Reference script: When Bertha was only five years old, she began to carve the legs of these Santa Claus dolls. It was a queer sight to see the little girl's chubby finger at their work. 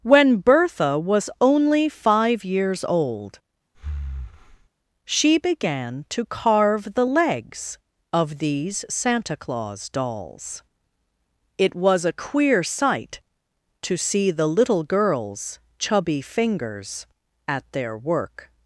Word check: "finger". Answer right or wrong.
wrong